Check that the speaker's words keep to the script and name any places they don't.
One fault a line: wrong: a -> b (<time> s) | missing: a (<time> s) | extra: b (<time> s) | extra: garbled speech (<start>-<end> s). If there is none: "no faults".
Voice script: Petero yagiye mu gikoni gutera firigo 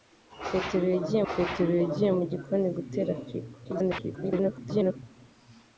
extra: petero yagiye (1.3 s)
extra: garbled speech (3.6-5.0 s)